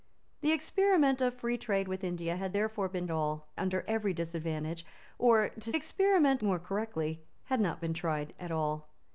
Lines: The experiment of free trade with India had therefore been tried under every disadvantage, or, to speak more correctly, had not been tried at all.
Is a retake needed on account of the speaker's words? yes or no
yes